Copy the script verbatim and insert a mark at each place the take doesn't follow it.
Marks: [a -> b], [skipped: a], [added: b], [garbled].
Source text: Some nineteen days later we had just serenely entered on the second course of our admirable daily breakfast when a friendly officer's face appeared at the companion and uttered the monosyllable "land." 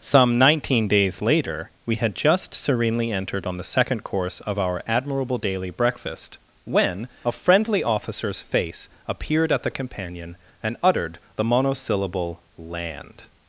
Some nineteen days later we had just serenely entered on the second course of our admirable daily breakfast when a friendly officer's face appeared at the companion and uttered the monosyllable "land."